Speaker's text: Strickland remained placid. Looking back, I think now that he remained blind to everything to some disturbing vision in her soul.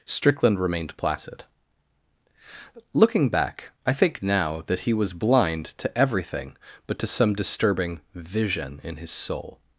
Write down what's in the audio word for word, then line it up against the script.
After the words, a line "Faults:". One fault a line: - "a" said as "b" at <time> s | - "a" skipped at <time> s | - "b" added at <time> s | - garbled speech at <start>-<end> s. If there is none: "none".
Strickland remained placid. Looking back, I think now that he was blind to everything but to some disturbing vision in his soul.
Faults:
- "remained" said as "was" at 4.9 s
- "but" added at 6.9 s
- "her" said as "his" at 9.0 s